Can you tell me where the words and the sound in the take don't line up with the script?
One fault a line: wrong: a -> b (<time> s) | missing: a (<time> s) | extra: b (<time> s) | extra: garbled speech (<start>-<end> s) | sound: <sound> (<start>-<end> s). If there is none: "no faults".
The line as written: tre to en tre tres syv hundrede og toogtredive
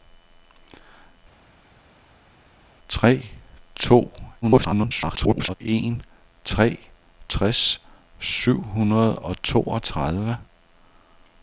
extra: garbled speech (4.4-5.5 s)